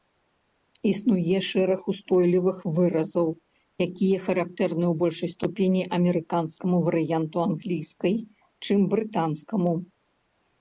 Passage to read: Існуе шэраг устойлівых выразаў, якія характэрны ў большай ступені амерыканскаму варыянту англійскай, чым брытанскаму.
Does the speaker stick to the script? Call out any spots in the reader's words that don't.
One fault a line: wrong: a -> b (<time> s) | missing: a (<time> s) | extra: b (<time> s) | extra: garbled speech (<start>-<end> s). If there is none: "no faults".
no faults